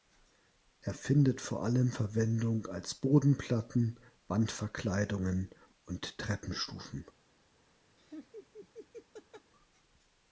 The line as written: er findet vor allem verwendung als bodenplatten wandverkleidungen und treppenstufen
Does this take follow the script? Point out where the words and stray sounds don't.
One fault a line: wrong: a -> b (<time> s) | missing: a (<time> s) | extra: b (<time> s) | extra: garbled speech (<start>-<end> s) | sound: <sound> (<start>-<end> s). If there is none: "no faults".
sound: laugh (8.0-9.5 s)